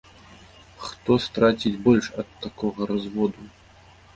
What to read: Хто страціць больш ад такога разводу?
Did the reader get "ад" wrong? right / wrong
right